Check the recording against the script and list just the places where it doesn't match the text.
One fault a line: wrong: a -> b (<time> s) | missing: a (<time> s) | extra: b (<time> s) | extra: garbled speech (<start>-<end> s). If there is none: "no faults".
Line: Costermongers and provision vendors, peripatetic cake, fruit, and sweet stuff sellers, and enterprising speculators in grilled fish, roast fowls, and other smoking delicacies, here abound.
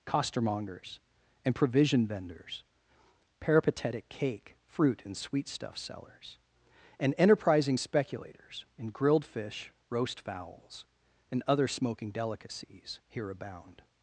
no faults